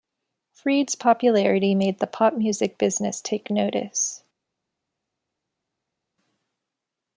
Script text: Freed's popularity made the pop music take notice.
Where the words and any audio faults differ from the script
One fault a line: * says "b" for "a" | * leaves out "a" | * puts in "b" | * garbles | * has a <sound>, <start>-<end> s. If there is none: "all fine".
* puts in "business"